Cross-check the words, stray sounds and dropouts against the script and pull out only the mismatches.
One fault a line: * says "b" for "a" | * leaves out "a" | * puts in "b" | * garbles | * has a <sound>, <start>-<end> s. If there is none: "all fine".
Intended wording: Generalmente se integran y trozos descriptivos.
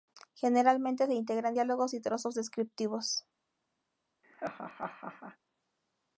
* puts in "diálogos"
* has a laugh, 4.2-5.4 s